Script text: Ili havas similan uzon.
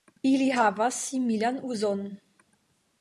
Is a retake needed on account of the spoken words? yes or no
no